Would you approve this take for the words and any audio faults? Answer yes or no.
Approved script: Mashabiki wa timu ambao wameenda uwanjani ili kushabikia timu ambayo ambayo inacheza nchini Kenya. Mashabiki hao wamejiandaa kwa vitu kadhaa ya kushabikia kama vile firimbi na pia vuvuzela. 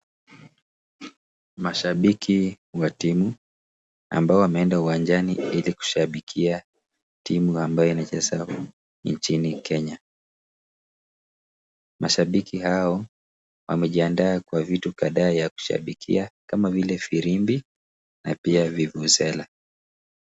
no